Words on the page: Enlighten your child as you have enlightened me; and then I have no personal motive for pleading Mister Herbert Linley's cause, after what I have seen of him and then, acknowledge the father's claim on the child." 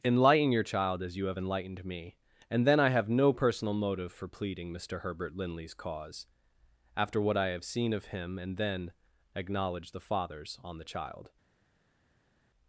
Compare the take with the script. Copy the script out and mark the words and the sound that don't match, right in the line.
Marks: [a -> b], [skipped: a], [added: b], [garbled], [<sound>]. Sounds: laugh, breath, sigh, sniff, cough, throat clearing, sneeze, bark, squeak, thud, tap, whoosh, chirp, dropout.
Enlighten your child as you have enlightened me; and then I have no personal motive for pleading Mister Herbert Linley's cause, after what I have seen of him and then, acknowledge the father's [skipped: claim] on the child."